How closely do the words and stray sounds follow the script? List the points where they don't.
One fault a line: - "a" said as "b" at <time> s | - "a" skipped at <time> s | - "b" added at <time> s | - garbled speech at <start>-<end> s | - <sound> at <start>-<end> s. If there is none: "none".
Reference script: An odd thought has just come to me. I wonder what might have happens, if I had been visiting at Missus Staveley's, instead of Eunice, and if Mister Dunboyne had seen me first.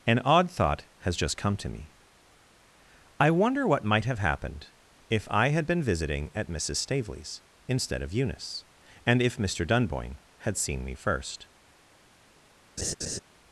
- "happens" said as "happened" at 4.2 s
- laugh at 12.8-13.2 s